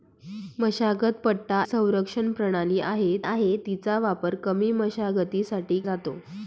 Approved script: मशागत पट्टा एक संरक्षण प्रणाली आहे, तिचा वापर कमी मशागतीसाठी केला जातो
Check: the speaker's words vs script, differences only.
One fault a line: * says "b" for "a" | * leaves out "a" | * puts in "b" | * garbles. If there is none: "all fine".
* leaves out "एक"
* puts in "आहे"
* leaves out "केला"